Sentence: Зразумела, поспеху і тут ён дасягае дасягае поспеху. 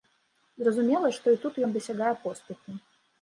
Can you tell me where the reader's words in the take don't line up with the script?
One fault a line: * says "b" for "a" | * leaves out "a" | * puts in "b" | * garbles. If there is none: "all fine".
* says "што" for "поспеху"
* leaves out "дасягае"